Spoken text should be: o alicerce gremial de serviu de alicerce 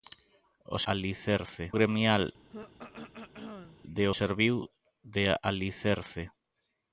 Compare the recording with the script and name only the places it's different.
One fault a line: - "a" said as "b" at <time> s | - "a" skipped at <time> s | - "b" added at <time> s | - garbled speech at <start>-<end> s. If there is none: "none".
none